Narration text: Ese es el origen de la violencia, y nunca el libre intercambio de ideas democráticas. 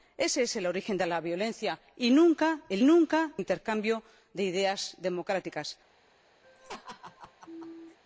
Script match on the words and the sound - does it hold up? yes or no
no